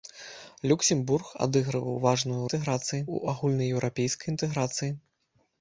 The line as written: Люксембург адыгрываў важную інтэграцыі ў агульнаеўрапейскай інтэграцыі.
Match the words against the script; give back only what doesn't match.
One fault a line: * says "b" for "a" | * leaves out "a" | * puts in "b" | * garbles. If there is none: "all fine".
all fine